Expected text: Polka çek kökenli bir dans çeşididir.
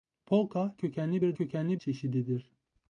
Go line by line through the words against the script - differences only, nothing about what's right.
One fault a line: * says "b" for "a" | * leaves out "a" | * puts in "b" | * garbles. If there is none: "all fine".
* leaves out "çek"
* says "kökenli" for "dans"